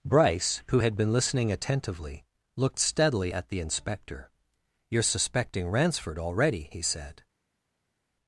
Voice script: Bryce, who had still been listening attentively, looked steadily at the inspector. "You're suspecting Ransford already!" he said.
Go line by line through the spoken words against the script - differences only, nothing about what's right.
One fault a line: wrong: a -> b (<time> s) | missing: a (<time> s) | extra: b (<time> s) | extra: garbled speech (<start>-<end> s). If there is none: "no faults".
missing: still (1.0 s)